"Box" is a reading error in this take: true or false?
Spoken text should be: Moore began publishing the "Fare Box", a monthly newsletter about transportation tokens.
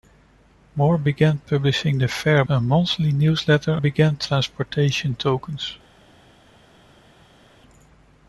true